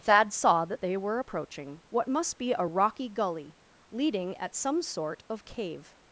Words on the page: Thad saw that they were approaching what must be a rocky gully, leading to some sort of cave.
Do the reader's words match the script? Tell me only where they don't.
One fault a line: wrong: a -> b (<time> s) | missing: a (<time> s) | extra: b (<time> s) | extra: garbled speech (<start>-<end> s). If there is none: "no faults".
wrong: to -> at (4.4 s)